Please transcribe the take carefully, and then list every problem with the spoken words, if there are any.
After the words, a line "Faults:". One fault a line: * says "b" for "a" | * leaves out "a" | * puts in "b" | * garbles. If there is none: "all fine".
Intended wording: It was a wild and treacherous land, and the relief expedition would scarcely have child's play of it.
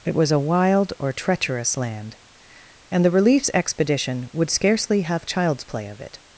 It was a wild or treacherous land, and the reliefs expedition would scarcely have child's play of it.
Faults:
* says "or" for "and"
* says "reliefs" for "relief"